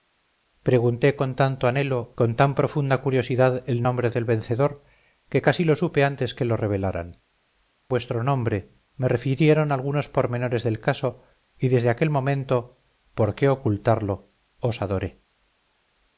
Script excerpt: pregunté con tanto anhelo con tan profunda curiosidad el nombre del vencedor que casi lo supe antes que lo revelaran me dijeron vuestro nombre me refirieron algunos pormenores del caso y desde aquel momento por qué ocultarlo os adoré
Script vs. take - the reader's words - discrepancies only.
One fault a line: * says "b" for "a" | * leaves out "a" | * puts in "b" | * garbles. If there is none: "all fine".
* leaves out "me dijeron"